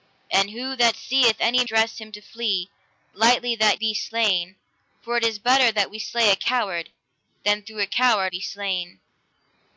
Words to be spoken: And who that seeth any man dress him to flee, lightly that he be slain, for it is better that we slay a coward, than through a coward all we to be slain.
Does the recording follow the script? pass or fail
fail